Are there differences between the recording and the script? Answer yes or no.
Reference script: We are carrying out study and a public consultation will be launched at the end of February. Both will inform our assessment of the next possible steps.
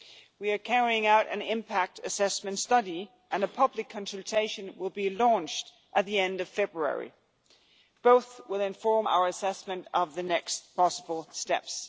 yes